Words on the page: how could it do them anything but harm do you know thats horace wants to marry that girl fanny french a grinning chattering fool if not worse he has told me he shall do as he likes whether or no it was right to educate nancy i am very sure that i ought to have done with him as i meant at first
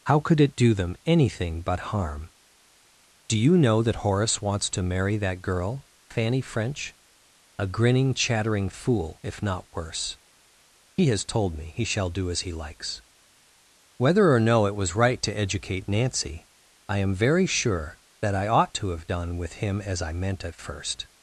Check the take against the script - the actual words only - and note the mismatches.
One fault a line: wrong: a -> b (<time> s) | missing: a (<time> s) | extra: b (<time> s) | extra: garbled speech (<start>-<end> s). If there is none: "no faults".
wrong: thats -> that (3.8 s)